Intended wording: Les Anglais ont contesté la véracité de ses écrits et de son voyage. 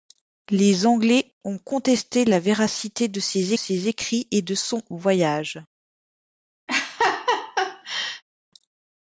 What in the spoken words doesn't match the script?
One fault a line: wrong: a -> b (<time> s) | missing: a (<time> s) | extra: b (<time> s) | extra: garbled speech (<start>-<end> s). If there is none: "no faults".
extra: ses (3.5 s)